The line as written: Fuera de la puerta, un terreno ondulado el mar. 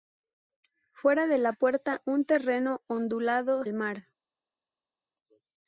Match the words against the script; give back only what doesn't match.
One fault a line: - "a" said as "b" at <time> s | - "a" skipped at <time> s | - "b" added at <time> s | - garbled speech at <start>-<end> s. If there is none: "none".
none